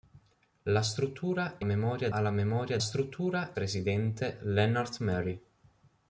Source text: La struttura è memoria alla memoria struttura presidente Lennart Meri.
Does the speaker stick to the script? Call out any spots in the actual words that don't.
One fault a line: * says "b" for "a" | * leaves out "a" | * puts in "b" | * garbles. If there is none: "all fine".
all fine